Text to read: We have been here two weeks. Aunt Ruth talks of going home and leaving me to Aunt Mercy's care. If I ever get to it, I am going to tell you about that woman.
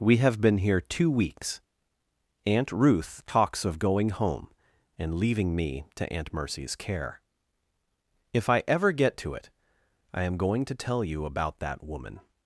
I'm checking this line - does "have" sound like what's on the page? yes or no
yes